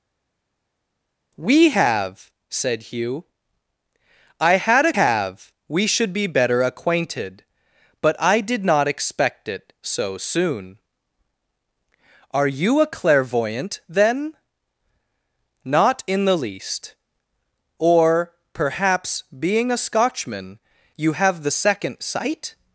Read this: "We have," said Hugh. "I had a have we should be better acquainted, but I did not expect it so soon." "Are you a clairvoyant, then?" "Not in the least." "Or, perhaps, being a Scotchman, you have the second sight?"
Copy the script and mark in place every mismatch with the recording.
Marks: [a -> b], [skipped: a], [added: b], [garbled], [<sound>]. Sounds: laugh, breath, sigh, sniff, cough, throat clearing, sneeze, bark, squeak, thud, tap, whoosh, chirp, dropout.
"We have," said Hugh. "I had a have we should be better acquainted, but I did not expect it so soon." "Are you a clairvoyant, then?" "Not in the least." "Or, perhaps, being a Scotchman, you have the second sight?"